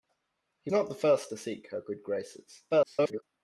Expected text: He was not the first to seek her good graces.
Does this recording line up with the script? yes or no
no